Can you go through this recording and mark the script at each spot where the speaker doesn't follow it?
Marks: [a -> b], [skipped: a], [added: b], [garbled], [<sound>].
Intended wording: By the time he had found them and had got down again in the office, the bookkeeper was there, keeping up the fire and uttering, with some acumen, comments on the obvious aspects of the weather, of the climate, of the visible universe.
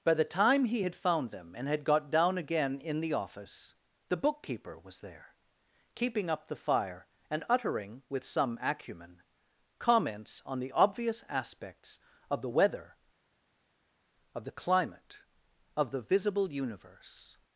By the time he had found them and had got down again in the office, the bookkeeper was there, keeping up the fire and uttering, with some acumen, comments on the obvious aspects of the weather, of the climate, of the visible universe.